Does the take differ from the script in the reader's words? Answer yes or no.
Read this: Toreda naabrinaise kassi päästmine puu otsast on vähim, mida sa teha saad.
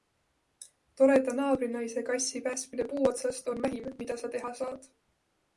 no